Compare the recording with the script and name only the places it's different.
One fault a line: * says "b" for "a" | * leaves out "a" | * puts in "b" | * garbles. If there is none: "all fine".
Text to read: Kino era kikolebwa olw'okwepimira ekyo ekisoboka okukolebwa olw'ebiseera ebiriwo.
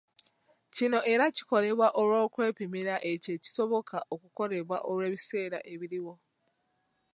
all fine